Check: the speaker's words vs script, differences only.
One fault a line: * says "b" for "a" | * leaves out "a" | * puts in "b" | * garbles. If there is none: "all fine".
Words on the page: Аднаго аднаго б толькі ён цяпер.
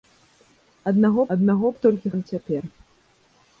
all fine